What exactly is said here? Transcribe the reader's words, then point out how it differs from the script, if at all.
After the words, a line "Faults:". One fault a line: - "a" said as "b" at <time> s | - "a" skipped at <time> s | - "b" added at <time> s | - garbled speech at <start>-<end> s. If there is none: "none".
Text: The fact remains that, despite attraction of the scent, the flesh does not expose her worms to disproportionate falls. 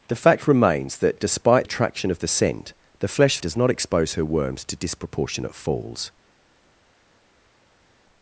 The fact remains that, despite attraction of the scent, the flesh does not expose her worms to disproportionate falls.
Faults:
none